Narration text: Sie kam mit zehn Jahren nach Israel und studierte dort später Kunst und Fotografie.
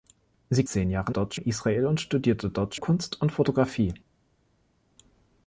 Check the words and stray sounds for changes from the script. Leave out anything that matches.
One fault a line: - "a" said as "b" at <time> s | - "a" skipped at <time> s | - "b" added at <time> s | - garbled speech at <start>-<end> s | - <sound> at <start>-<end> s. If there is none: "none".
- "kam mit" skipped at 0.7 s
- "nach" said as "dort" at 1.1 s
- "später" skipped at 2.7 s